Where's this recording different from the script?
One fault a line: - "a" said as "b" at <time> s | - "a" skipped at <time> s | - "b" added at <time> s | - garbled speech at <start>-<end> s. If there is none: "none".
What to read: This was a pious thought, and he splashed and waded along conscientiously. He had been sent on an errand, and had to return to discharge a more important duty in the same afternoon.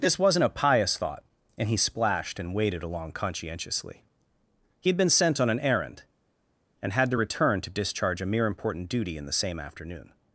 - "was" said as "wasn't" at 0.2 s
- "more" said as "mere" at 8.3 s